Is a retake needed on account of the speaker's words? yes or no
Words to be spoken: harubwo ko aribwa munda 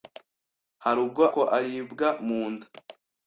no